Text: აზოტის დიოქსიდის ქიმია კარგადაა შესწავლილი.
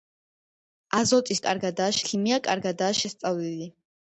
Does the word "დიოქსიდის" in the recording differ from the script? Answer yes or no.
yes